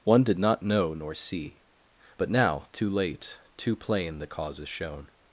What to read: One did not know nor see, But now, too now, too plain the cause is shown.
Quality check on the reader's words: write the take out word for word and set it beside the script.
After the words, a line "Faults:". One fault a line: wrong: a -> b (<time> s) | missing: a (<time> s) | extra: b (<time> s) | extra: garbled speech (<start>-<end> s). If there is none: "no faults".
One did not know nor see, But now, too late, too plain the cause is shown.
Faults:
wrong: now -> late (2.9 s)